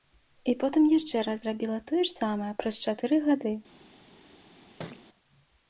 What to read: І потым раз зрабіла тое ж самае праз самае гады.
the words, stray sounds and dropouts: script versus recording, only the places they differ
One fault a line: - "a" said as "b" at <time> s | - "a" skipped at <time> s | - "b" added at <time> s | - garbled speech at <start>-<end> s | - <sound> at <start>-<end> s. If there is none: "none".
- "яшчэ" added at 0.9 s
- "самае" said as "чатыры" at 2.9 s
- thud at 4.8-5.1 s